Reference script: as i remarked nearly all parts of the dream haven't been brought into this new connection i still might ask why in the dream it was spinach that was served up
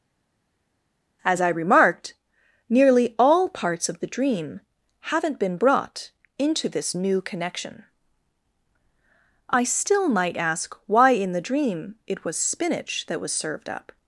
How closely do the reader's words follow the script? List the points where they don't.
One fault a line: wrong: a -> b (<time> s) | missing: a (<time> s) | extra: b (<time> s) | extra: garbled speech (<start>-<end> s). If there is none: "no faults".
no faults